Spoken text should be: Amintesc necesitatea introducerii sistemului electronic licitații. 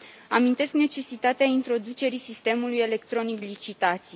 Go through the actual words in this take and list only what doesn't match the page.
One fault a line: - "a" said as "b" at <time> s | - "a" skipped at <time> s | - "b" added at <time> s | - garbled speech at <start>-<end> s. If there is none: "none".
none